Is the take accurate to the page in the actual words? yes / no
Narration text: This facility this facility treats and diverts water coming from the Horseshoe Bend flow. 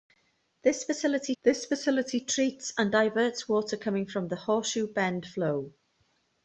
yes